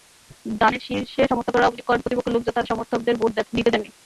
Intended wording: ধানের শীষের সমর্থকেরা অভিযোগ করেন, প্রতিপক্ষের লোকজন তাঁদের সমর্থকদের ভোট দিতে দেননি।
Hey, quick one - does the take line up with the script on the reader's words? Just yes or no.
yes